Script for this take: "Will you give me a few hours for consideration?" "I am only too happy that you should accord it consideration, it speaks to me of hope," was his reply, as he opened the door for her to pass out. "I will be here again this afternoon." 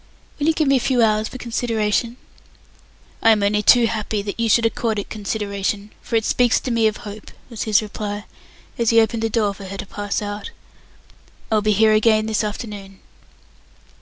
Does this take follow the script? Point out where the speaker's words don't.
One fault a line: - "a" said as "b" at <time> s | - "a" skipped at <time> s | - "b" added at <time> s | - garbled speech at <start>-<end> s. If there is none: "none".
- "for" added at 6.0 s